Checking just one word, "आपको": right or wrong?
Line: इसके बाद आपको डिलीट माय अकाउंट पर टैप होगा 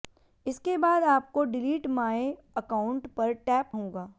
right